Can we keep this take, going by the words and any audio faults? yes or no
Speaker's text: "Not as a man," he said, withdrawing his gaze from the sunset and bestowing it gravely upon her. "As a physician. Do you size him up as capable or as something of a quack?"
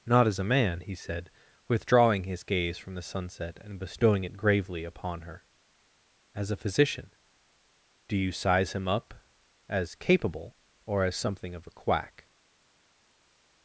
yes